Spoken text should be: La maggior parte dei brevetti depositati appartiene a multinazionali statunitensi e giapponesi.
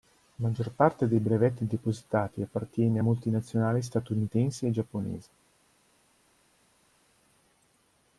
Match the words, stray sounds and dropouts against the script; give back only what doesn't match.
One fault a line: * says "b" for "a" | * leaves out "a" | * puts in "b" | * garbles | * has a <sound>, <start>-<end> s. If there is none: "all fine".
all fine